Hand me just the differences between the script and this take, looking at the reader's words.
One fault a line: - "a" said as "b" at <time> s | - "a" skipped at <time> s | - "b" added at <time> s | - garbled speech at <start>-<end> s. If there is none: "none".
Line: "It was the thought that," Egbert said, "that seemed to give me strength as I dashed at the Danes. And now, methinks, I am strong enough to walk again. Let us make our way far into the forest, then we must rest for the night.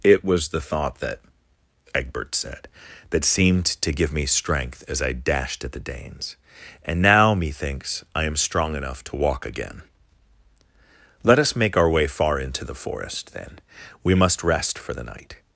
none